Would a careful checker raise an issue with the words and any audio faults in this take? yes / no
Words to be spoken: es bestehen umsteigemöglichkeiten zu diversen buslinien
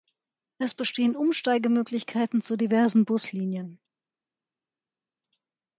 no